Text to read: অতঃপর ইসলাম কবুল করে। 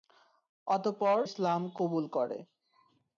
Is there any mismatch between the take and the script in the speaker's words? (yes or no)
no